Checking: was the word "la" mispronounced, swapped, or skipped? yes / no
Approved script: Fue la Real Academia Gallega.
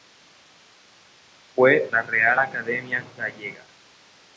no